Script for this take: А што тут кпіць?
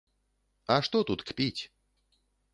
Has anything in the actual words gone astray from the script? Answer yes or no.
no